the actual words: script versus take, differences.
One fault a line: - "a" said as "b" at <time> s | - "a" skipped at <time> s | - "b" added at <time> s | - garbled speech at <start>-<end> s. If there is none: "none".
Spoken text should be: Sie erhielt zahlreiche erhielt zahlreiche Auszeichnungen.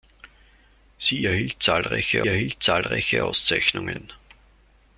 none